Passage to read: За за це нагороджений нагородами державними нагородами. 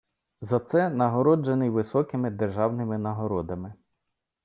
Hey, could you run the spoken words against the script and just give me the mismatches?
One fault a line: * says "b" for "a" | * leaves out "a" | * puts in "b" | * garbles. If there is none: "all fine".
* leaves out "за"
* says "високими" for "нагородами"